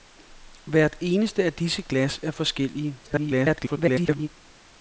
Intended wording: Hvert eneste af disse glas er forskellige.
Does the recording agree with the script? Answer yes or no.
no